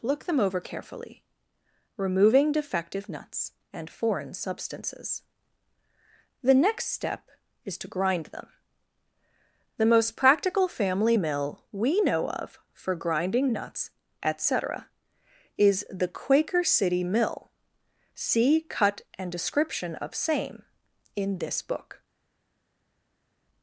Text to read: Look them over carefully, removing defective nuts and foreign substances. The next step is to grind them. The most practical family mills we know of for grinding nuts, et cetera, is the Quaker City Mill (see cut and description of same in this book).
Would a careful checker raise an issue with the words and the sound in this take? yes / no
yes